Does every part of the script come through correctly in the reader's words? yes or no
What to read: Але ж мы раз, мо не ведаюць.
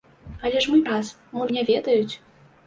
yes